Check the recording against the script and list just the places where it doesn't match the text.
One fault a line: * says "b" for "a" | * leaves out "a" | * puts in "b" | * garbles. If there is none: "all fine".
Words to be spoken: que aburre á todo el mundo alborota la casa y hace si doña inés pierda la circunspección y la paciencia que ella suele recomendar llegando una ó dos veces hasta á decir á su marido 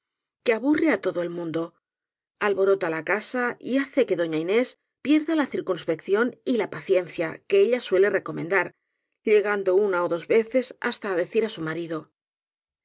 * says "que" for "si"